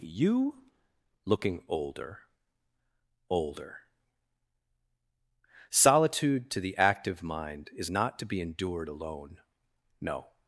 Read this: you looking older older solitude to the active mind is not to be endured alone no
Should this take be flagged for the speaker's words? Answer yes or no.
no